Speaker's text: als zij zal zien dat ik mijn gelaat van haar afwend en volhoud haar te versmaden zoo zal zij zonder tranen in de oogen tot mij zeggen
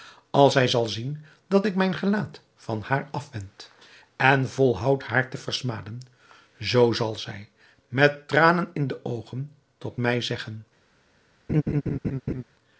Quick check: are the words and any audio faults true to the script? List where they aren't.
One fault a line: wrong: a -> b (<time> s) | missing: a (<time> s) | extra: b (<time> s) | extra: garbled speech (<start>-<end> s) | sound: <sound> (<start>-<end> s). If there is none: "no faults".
wrong: zonder -> met (7.9 s)
sound: laugh (11.5-12.4 s)